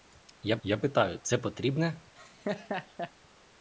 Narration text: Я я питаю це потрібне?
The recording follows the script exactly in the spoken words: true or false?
true